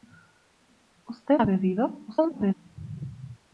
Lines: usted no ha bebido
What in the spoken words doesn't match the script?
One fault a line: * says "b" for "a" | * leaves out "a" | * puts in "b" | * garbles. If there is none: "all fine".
* leaves out "no"
* garbles